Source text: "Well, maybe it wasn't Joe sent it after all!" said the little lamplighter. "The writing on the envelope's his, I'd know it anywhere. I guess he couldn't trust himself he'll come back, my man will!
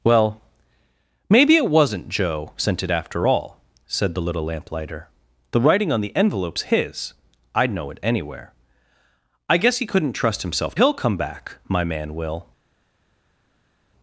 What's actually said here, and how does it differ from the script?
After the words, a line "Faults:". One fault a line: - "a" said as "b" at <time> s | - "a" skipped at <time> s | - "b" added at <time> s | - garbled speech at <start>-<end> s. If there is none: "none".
"Well, maybe it wasn't Joe sent it after all!" said the little lamplighter. "The writing on the envelope's his, I'd know it anywhere. I guess he couldn't trust himself he'll come back, my man will!
Faults:
none